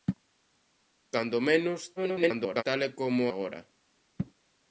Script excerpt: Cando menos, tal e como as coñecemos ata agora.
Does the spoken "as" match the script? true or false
false